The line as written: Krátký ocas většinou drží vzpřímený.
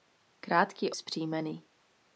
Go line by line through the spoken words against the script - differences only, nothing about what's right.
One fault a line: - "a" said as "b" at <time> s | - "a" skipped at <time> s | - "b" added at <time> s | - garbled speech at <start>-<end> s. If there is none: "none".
- "ocas většinou drží" skipped at 0.9 s